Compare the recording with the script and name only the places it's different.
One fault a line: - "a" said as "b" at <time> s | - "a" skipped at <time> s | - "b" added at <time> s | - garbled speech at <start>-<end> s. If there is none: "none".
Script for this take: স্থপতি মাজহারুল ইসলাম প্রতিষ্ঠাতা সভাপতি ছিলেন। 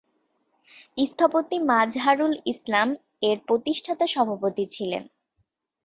- "এর" added at 3.2 s